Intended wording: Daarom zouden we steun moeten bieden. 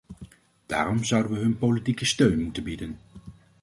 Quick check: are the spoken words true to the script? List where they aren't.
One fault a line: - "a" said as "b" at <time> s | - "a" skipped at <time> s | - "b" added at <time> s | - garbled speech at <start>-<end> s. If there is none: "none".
- "hun politieke" added at 1.4 s